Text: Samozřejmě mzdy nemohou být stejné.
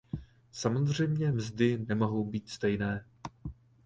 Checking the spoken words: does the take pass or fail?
pass